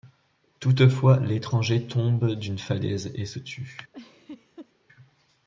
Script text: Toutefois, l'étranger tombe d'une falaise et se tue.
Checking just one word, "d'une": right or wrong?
right